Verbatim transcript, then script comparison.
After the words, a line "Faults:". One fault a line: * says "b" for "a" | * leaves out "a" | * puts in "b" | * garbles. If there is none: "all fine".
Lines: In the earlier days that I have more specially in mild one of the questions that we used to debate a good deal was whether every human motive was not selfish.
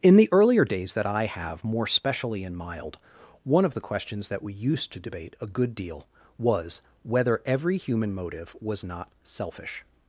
In the earlier days that I have more specially in mild one of the questions that we used to debate a good deal was whether every human motive was not selfish.
Faults:
all fine